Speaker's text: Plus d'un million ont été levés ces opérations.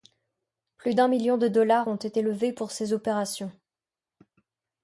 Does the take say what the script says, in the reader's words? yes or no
no